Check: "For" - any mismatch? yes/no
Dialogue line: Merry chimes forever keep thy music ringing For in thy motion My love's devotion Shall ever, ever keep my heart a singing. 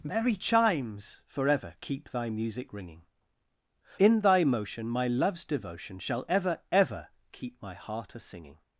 yes